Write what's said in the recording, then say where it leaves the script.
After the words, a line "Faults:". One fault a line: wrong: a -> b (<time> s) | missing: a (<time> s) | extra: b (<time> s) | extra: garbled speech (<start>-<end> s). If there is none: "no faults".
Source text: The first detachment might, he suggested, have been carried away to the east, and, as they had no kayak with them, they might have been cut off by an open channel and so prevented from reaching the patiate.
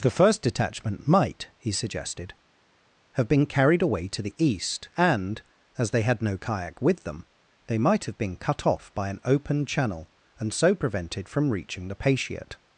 The first detachment might, he suggested, have been carried away to the east, and, as they had no kayak with them, they might have been cut off by an open channel and so prevented from reaching the patiate.
Faults:
no faults